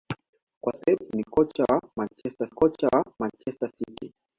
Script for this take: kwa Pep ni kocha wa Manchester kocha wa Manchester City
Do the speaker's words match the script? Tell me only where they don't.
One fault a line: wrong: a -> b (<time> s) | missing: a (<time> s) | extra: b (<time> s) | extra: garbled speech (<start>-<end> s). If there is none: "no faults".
no faults